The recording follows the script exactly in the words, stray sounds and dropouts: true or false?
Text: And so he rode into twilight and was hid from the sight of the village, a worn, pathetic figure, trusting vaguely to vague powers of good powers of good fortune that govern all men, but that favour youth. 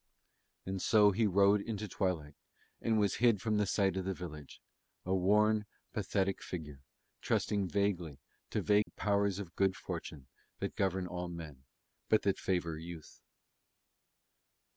false